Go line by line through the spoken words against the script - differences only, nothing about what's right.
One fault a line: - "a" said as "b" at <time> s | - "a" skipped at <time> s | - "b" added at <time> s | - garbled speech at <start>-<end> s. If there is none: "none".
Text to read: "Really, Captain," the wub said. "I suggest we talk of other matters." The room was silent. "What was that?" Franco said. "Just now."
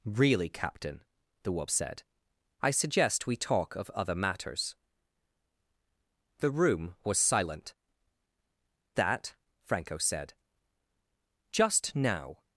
- "What was" skipped at 7.7 s